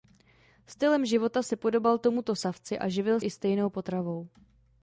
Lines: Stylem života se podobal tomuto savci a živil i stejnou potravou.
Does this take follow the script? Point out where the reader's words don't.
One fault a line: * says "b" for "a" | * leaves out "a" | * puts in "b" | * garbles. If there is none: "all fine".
all fine